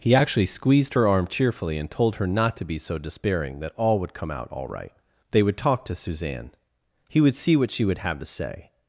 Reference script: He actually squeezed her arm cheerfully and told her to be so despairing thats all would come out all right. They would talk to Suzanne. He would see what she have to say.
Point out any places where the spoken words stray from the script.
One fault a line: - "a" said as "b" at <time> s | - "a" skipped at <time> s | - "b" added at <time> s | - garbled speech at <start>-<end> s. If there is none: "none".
- "not" added at 2.3 s
- "thats" said as "that" at 3.6 s
- "would" added at 7.8 s